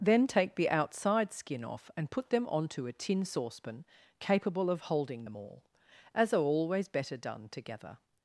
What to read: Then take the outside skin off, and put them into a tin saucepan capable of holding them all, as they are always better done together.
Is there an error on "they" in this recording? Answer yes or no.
yes